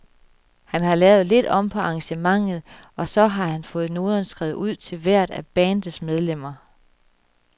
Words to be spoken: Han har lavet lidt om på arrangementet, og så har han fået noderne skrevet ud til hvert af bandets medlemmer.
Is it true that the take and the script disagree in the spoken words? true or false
false